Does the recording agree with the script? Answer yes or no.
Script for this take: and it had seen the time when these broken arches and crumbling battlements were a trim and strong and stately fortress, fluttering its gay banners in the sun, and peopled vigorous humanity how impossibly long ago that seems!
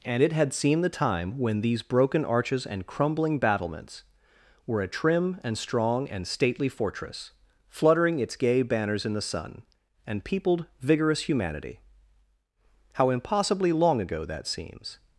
yes